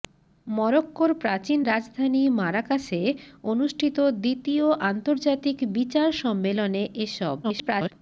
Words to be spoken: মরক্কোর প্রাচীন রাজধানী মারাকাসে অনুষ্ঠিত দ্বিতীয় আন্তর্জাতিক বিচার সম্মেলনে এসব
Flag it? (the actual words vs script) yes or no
yes